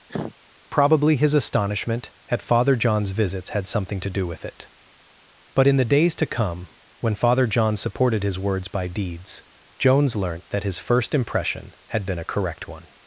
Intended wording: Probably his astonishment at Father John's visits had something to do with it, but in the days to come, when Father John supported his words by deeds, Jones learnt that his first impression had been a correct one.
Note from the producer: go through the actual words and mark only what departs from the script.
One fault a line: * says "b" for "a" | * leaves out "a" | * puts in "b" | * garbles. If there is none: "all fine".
all fine